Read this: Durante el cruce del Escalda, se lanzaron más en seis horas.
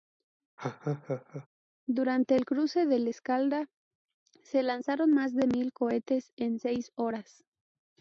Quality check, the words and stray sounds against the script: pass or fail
fail